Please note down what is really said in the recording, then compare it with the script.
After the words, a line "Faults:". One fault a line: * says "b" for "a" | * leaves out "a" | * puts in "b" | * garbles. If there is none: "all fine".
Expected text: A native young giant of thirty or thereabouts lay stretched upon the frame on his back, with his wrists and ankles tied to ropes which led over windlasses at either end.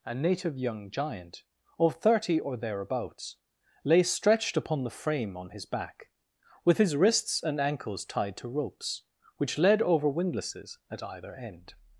A native young giant of thirty or thereabouts lay stretched upon the frame on his back, with his wrists and ankles tied to ropes which led over windlasses at either end.
Faults:
all fine